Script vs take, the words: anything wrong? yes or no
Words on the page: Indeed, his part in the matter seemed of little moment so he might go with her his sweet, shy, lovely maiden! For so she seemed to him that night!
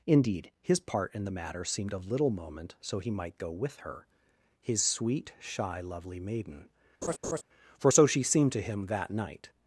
no